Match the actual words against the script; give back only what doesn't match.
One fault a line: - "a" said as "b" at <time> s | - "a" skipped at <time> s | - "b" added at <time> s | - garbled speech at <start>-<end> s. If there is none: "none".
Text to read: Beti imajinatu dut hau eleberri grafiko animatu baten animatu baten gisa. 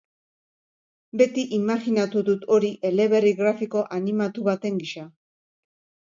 - "hau" said as "hori" at 2.6 s
- "animatu baten" skipped at 4.8 s